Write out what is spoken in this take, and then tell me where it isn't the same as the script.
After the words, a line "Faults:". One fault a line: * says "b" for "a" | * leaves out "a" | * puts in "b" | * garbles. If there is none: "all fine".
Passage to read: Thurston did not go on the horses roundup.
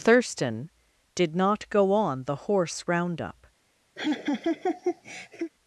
Thurston did not go on the horse roundup.
Faults:
* says "horse" for "horses"